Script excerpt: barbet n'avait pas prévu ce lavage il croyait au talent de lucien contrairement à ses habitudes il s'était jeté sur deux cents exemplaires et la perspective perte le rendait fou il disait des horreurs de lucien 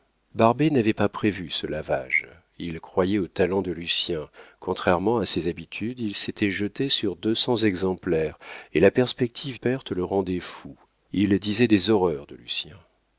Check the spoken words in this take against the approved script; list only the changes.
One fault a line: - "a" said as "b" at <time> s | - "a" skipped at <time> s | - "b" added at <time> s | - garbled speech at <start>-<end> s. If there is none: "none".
none